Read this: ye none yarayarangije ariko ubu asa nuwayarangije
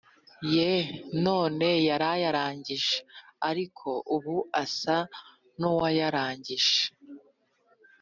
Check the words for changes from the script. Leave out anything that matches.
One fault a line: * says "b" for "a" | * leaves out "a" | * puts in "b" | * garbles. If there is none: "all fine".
all fine